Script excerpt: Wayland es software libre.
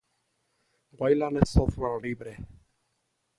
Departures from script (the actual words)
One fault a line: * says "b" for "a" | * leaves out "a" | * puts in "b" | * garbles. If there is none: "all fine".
all fine